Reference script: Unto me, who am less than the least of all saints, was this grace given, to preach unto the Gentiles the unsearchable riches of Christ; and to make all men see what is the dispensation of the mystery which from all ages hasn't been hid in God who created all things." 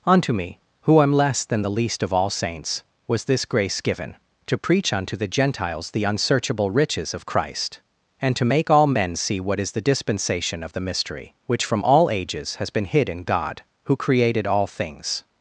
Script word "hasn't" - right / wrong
wrong